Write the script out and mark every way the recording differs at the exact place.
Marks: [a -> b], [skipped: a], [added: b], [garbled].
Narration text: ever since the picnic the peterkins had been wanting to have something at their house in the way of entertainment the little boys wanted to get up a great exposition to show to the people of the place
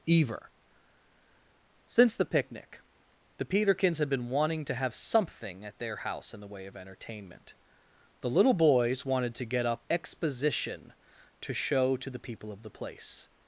ever since the picnic the peterkins had been wanting to have something at their house in the way of entertainment the little boys wanted to get up [skipped: a great] exposition to show to the people of the place